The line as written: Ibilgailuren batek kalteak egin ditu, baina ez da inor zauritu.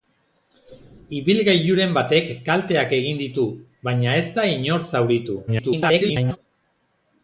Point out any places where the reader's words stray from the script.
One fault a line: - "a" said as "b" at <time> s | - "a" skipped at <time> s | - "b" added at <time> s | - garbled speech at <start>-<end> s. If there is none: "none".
- garbled speech at 5.5-6.4 s